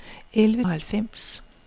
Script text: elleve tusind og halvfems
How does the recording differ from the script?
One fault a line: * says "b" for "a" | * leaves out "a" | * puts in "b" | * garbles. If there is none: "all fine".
* leaves out "tusind"